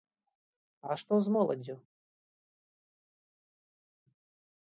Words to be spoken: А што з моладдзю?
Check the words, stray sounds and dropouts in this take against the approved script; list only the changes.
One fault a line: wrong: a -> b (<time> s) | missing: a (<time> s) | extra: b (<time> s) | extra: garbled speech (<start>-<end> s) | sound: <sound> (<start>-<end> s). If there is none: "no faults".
no faults